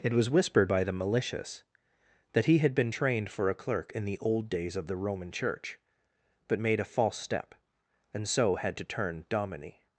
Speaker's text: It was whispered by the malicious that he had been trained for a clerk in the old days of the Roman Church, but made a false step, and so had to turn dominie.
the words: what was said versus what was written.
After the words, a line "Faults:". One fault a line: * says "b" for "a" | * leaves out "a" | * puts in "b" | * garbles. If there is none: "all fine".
It was whispered by the malicious that he had been trained for a clerk in the old days of the Roman Church, but made a false step, and so had to turn dominie.
Faults:
all fine